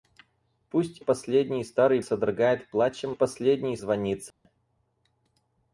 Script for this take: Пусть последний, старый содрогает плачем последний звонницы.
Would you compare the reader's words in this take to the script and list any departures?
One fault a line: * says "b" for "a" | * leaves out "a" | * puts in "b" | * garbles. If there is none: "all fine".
all fine